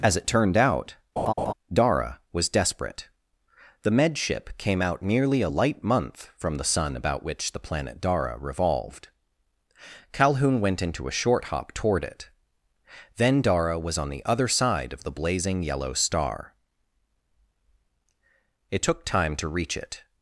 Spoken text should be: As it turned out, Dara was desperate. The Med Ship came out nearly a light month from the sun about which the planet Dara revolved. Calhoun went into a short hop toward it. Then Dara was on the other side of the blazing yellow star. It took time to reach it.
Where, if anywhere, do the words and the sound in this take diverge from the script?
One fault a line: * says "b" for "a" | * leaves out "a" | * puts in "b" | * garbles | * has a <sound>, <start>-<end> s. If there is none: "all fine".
* has a laugh, 1.2-1.5 s